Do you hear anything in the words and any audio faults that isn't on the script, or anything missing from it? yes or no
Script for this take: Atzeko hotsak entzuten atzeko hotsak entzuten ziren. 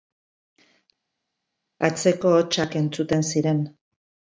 yes